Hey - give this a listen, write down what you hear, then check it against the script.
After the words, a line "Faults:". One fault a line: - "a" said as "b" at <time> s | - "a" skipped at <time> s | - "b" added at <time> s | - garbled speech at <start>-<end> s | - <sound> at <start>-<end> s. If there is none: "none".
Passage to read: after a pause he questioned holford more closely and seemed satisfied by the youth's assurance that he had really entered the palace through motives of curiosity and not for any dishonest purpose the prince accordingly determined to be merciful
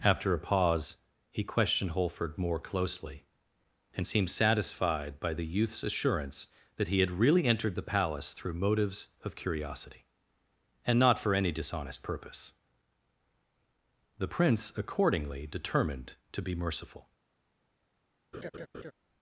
after a pause he questioned holford more closely and seemed satisfied by the youth's assurance that he had really entered the palace through motives of curiosity and not for any dishonest purpose the prince accordingly determined to be merciful
Faults:
- laugh at 18.3-18.9 s